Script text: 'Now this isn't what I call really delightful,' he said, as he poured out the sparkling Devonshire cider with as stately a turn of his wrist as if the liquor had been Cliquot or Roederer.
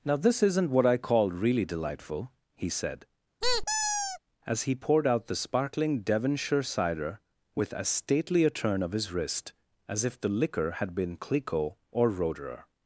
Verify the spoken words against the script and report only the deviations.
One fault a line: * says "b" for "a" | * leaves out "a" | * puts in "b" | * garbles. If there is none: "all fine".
all fine